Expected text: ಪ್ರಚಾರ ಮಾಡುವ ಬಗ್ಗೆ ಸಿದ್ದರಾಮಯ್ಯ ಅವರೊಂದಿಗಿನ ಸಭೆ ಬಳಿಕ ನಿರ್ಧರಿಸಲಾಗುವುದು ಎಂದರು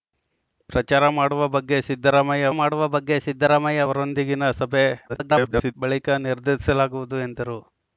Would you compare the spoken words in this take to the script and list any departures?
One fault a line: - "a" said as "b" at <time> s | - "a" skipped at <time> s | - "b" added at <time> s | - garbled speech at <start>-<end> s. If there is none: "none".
- "ಮಾಡುವ ಬಗ್ಗೆ ಸಿದ್ದರಾಮಯ್ಯ" added at 2.5 s
- garbled speech at 5.1-5.7 s